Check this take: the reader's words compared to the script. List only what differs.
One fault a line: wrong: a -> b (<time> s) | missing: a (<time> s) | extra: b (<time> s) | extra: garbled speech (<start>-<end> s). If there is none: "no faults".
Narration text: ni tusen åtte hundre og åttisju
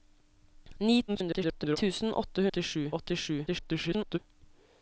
extra: garbled speech (1.1-1.8 s)
wrong: hundre -> åttisju (2.5 s)
extra: garbled speech (3.5-4.2 s)